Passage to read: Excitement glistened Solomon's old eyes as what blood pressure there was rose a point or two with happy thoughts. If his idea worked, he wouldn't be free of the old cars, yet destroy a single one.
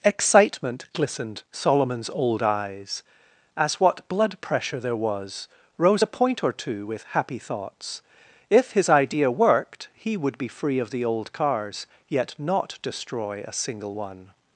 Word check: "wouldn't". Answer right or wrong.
wrong